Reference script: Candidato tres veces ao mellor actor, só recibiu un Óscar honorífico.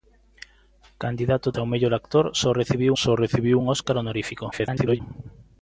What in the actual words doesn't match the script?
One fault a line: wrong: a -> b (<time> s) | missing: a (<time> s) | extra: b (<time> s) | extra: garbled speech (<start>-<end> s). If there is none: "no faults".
missing: tres veces (1.5 s)
extra: só recibiu (3.0 s)
extra: garbled speech (4.5-5.0 s)